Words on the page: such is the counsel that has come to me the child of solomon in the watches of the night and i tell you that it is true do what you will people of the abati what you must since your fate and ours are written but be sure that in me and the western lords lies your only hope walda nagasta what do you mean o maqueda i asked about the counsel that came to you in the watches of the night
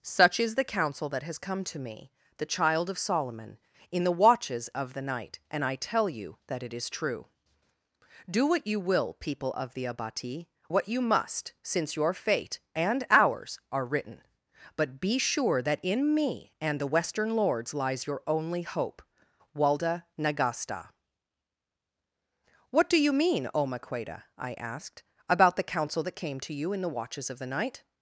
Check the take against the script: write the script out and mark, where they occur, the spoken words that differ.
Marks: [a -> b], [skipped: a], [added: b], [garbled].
such is the counsel that has come to me the child of solomon in the watches of the night and i tell you that it is true do what you will people of the abati what you must since your fate and ours are written but be sure that in me and the western lords lies your only hope walda nagasta what do you mean o maqueda i asked about the counsel that came to you in the watches of the night